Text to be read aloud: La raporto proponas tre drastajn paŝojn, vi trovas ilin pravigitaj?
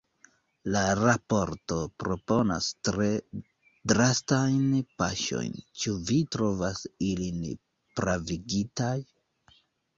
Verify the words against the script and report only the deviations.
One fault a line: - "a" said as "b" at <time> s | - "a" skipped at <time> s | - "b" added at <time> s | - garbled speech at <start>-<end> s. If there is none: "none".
- "ĉu" added at 5.8 s